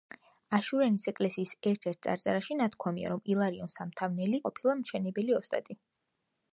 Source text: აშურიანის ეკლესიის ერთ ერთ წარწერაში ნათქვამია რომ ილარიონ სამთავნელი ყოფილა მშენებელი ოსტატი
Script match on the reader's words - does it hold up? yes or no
yes